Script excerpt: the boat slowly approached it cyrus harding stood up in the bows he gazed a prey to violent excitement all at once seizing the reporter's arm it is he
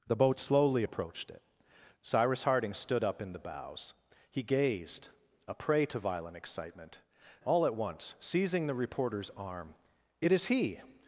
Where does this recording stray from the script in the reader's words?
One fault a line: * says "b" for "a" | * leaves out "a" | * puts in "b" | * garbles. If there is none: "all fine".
all fine